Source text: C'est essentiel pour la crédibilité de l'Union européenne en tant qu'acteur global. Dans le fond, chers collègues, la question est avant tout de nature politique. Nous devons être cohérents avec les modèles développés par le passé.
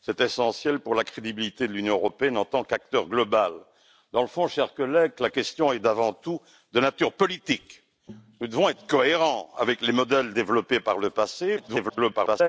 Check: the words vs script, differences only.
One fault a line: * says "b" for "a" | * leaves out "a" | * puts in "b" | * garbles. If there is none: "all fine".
* garbles